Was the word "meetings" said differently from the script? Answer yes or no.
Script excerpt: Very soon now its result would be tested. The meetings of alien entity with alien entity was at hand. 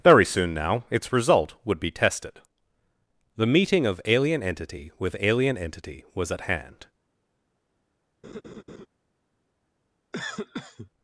yes